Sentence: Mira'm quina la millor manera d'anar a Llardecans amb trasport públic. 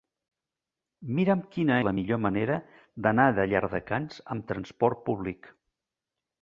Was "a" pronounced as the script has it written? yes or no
yes